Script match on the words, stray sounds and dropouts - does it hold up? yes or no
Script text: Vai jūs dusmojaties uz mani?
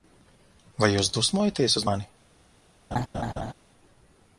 no